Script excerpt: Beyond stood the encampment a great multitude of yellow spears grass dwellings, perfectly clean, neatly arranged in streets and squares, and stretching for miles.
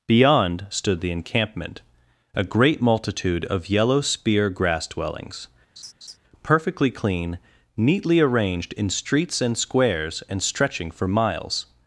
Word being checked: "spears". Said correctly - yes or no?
no